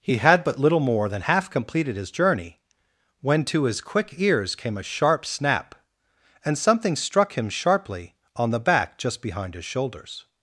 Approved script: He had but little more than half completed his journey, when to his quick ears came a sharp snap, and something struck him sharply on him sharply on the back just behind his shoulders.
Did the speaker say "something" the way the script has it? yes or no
yes